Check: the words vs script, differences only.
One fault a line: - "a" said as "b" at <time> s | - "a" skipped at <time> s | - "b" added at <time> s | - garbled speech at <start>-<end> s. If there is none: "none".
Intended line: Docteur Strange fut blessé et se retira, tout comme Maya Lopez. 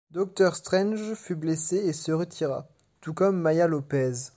none